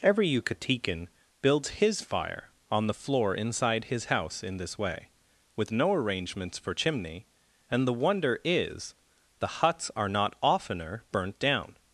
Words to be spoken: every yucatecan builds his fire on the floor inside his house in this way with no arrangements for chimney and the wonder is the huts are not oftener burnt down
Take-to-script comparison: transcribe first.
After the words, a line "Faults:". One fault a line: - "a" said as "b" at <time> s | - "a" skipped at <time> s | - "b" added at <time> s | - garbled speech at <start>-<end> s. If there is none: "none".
every yucatecan builds his fire on the floor inside his house in this way with no arrangements for chimney and the wonder is the huts are not oftener burnt down
Faults:
none